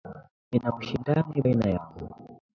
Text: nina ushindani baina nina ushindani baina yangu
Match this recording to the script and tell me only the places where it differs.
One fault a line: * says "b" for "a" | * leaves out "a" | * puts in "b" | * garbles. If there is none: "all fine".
* leaves out "nina ushindani baina"